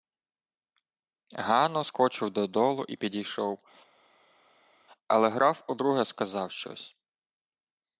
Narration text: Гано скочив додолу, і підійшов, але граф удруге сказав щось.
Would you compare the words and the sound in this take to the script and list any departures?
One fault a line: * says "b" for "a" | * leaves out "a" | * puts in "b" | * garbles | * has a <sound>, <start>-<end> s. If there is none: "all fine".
all fine